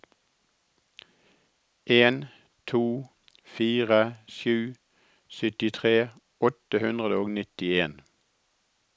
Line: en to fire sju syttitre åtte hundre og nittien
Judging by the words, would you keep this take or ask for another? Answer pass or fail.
pass